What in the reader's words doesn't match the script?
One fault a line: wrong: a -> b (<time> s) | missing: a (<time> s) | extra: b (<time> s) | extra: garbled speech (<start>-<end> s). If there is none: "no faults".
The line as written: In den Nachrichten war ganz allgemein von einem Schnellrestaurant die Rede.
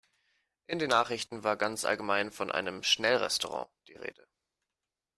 no faults